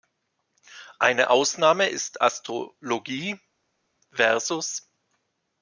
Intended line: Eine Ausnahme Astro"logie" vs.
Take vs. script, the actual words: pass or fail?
fail